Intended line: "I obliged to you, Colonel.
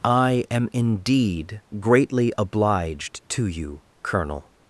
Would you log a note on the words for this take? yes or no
yes